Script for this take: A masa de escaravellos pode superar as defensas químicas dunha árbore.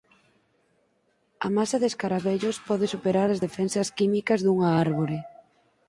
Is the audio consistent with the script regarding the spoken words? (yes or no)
yes